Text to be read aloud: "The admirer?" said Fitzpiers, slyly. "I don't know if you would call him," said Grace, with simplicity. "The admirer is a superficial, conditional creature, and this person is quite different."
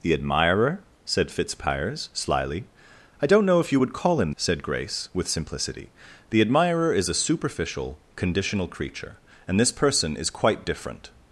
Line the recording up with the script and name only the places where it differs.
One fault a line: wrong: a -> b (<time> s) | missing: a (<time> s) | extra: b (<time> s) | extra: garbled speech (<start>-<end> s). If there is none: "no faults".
no faults